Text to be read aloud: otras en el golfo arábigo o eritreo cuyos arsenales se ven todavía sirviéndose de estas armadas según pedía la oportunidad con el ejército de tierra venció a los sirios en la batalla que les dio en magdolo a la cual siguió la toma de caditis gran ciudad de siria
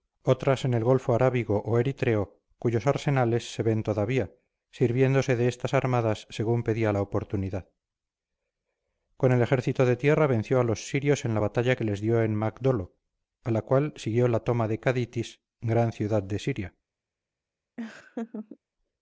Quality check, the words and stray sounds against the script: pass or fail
fail